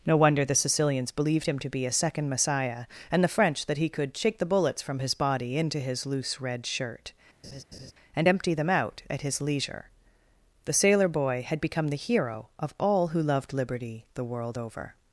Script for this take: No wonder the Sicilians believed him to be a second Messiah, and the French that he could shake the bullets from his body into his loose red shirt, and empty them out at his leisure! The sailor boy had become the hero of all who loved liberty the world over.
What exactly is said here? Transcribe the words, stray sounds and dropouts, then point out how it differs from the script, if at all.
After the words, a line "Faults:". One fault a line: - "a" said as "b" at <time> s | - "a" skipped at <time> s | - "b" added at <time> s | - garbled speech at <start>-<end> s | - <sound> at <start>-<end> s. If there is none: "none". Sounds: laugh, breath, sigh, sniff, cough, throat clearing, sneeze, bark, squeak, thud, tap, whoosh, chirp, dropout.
No wonder the Sicilians believed him to be a second Messiah, and the French that he could shake the bullets from his body into his loose red shirt, and empty them out at his leisure! The sailor boy had become the hero of all who loved liberty the world over.
Faults:
- laugh at 7.4-7.9 s